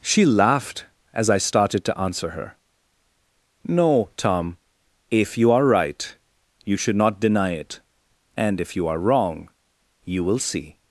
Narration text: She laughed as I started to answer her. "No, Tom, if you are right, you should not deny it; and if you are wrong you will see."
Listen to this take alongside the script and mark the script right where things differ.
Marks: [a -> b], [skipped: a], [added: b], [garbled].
She laughed as I started to answer her. "No, Tom, if you are right, you should not deny it; and if you are wrong you will see."